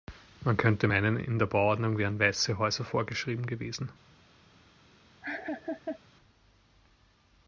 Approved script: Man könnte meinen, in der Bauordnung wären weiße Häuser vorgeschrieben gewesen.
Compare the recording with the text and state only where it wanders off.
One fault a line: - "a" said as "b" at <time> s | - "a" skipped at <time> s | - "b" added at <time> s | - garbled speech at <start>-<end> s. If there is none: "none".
none